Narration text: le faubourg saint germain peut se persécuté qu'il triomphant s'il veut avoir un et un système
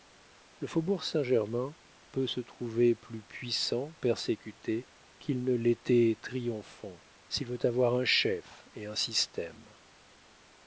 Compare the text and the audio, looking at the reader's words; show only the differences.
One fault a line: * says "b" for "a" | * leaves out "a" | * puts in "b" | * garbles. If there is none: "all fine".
* puts in "trouver plus puissant"
* puts in "ne l'était"
* puts in "chef"